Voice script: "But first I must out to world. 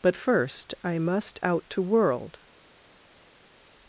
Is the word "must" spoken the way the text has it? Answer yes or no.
yes